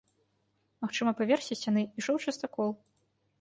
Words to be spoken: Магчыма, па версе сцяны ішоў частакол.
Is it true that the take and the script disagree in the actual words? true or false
false